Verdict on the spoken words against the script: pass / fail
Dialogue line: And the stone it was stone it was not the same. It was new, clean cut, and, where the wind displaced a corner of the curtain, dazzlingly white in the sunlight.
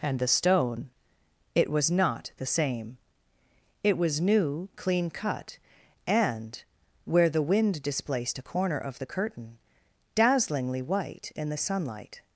fail